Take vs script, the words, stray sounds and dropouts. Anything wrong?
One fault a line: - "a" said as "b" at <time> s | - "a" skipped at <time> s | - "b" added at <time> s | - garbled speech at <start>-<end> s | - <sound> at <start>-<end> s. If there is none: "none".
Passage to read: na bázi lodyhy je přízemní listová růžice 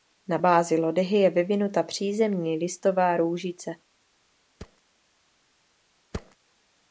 - "vyvinuta" added at 1.3 s
- thud at 4.6-4.8 s
- thud at 6.1-6.4 s